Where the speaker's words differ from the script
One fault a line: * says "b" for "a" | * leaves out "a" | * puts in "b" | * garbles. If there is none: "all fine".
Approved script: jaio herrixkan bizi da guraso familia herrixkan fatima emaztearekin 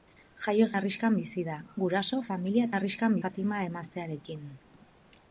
all fine